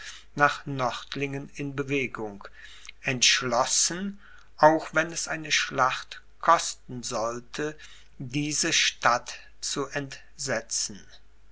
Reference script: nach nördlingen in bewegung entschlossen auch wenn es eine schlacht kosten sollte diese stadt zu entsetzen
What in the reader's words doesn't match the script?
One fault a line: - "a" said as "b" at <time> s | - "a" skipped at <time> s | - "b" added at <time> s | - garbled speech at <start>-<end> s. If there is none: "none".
none